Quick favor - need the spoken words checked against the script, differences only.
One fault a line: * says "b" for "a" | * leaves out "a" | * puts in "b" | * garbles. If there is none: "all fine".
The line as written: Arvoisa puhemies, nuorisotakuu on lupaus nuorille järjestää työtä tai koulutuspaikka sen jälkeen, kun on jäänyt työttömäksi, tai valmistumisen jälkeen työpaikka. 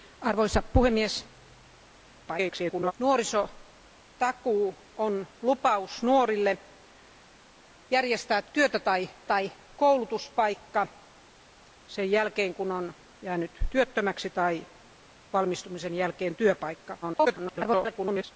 * garbles
* puts in "tai"
* garbles